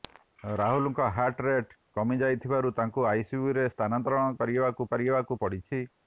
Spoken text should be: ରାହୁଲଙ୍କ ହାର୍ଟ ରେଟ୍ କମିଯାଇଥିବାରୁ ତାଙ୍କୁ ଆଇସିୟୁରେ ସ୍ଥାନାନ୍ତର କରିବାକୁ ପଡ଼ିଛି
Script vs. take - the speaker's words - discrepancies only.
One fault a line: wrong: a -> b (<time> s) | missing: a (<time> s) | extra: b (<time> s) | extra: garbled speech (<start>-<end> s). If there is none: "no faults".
extra: କରିବାକୁ (4.9 s)